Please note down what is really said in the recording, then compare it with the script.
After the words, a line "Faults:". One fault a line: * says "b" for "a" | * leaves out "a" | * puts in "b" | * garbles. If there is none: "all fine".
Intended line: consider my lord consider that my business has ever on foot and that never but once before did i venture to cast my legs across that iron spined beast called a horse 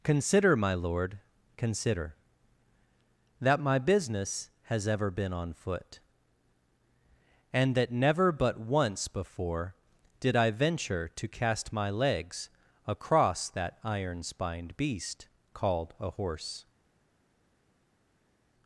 consider my lord consider that my business has ever been on foot and that never but once before did i venture to cast my legs across that iron spined beast called a horse
Faults:
* puts in "been"